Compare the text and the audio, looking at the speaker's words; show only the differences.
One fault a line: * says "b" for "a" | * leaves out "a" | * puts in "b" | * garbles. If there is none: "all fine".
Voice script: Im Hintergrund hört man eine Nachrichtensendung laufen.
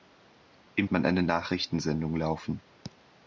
* leaves out "Hintergrund hört"